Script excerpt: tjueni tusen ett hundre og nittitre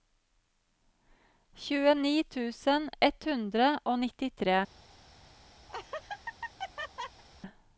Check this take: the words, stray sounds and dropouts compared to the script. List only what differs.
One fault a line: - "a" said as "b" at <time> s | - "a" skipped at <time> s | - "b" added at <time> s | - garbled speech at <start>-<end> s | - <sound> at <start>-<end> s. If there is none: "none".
- laugh at 5.7-7.2 s